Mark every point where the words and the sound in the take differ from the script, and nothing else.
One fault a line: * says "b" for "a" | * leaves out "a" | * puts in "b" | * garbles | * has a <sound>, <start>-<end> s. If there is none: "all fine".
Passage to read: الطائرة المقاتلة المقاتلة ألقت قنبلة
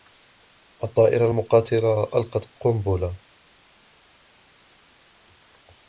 * leaves out "المقاتلة"